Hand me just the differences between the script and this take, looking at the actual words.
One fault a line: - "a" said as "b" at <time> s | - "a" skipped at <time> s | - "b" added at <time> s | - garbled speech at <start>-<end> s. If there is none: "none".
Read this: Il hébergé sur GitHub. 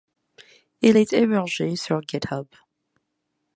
- "est" added at 0.9 s